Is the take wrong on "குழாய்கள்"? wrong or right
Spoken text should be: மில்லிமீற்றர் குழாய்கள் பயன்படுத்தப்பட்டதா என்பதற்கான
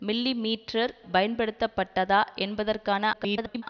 wrong